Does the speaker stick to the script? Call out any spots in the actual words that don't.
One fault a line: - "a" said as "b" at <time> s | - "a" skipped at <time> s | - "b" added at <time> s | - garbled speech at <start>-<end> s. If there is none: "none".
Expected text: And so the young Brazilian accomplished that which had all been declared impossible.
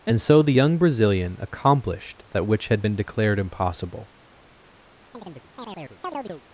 - "all" skipped at 2.8 s